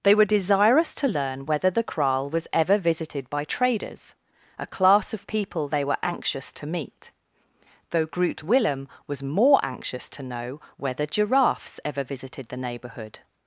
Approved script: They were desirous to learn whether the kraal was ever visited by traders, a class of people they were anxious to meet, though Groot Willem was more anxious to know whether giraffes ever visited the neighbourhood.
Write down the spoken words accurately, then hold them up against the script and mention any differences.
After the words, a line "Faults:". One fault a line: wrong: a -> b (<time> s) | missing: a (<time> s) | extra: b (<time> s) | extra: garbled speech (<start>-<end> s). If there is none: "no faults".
They were desirous to learn whether the kraal was ever visited by traders, a class of people they were anxious to meet, though Groot Willem was more anxious to know whether giraffes ever visited the neighbourhood.
Faults:
no faults